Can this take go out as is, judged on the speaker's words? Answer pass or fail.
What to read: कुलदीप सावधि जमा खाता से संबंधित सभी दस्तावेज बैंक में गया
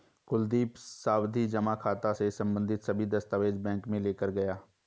fail